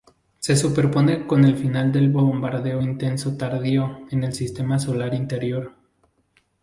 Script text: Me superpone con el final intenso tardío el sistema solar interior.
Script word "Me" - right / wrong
wrong